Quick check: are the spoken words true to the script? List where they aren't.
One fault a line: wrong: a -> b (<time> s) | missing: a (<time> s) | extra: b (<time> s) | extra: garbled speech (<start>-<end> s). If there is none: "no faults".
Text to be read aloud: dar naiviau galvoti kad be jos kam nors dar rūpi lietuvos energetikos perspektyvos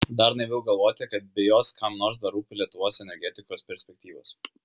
no faults